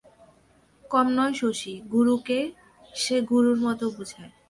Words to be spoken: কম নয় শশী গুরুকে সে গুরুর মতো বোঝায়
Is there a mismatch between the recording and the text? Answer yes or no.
no